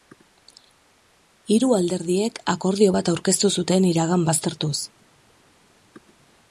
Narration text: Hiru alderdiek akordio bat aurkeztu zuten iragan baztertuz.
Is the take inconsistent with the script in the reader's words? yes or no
no